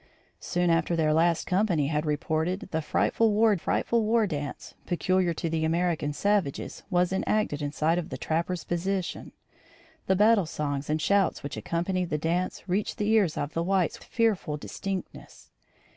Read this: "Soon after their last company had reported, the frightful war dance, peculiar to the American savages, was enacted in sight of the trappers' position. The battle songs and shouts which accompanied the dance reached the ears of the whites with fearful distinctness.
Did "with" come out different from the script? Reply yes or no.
yes